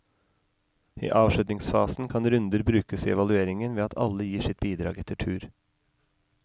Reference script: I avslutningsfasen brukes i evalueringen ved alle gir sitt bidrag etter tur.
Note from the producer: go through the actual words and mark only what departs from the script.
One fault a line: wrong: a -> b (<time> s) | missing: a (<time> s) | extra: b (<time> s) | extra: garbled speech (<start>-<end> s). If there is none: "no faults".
extra: kan runder (2.1 s)
extra: at (3.8 s)